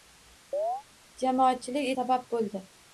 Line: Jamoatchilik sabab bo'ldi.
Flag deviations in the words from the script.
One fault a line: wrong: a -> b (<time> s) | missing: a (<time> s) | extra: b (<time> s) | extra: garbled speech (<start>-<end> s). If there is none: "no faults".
no faults